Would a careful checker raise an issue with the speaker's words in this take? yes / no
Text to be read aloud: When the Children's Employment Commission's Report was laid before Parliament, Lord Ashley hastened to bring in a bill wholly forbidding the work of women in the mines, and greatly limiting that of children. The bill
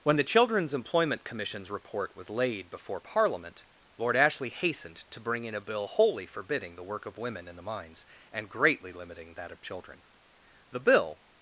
no